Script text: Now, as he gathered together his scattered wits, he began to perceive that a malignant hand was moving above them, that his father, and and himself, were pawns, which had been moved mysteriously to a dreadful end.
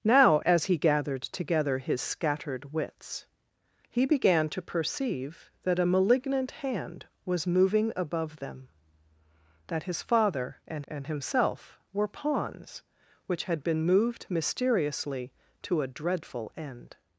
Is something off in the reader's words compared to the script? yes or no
no